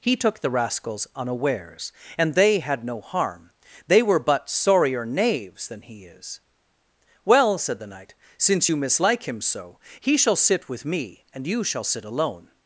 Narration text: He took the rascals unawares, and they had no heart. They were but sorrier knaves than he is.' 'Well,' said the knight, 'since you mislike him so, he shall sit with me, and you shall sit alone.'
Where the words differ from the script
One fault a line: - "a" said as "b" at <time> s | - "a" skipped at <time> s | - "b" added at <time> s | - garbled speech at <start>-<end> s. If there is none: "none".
- "heart" said as "harm" at 3.0 s